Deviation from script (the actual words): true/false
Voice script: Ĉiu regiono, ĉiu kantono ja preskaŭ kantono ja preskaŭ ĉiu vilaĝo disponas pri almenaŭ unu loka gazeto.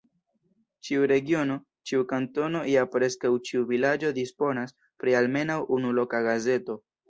true